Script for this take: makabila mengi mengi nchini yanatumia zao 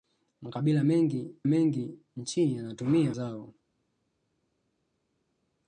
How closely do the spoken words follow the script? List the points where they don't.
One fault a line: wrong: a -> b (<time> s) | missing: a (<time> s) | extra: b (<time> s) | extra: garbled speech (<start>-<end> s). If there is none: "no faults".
no faults